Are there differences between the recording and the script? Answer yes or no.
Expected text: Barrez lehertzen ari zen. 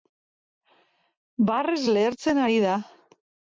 yes